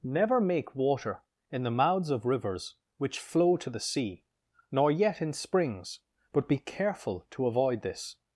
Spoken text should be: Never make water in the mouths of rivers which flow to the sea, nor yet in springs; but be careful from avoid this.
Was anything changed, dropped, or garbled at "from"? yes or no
yes